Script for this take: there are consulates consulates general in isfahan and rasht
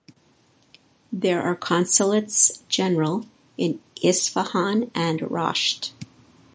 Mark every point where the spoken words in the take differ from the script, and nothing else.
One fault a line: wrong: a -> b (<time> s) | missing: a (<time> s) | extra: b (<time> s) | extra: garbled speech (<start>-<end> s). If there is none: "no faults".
missing: consulates (2.6 s)